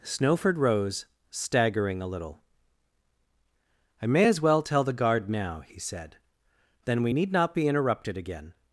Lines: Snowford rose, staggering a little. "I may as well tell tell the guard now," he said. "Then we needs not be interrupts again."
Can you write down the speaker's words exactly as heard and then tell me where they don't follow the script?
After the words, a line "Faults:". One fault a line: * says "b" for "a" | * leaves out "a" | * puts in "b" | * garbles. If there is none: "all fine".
Snowford rose, staggering a little. "I may as well tell the guard now," he said. "Then we need not be interrupted again."
Faults:
* leaves out "tell"
* says "need" for "needs"
* says "interrupted" for "interrupts"